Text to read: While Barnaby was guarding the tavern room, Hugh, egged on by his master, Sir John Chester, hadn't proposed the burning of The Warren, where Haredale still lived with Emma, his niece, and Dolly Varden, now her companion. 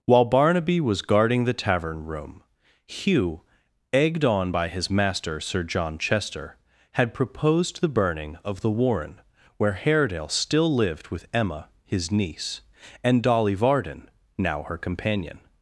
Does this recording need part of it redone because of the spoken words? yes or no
yes